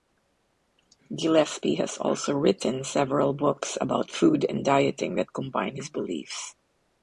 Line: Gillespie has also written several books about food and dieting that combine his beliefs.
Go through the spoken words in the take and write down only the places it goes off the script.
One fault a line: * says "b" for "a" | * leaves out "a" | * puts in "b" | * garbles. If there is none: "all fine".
all fine